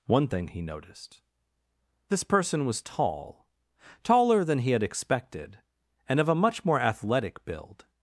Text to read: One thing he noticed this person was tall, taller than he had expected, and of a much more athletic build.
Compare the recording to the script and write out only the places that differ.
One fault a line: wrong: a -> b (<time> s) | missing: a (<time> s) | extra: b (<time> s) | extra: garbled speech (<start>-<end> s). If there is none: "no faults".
no faults